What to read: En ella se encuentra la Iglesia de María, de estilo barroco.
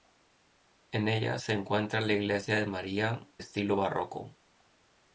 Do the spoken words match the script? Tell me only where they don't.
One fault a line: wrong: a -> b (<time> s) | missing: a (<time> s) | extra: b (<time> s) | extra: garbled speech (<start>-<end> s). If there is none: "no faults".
missing: de (3.3 s)